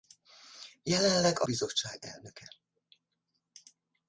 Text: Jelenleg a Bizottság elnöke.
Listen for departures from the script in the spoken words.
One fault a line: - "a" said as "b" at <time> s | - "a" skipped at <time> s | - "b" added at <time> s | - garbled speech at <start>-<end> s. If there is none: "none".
none